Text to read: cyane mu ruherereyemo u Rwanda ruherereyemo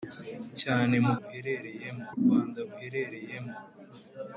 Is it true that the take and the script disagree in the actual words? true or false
false